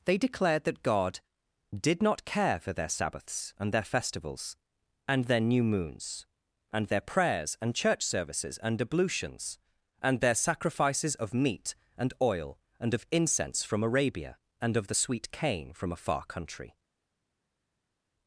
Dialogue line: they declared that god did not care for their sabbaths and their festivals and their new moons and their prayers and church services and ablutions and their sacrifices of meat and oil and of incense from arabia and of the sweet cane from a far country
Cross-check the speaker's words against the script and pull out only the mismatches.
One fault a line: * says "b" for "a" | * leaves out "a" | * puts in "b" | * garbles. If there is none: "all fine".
all fine